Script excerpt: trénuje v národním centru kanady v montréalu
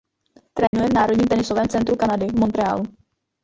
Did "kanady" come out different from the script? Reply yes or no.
no